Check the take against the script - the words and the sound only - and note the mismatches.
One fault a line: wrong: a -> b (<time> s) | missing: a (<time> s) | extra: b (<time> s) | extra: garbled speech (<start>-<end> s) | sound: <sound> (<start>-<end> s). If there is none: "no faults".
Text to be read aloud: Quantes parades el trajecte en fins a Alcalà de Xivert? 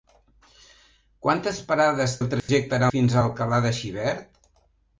sound: dropout (2.4-2.5 s)